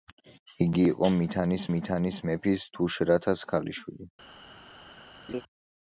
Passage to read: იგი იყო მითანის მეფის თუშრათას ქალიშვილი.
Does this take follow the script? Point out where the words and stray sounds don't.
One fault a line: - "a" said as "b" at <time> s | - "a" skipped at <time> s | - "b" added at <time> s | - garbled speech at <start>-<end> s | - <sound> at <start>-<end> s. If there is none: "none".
- "მითანის" added at 1.7 s
- laugh at 5.3-5.4 s